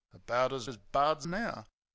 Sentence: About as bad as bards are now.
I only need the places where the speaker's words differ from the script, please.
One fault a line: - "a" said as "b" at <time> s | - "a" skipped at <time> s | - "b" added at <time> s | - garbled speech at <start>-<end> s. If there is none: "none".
- "bad" skipped at 0.7 s
- "are" skipped at 1.3 s